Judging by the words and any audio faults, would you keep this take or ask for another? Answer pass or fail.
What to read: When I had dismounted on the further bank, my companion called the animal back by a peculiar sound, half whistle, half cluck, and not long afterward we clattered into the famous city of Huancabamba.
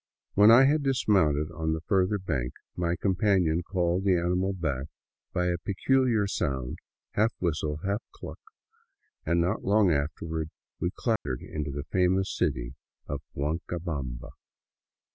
fail